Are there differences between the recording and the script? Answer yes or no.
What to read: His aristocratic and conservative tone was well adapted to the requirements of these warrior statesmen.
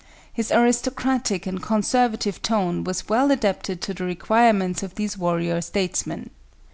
no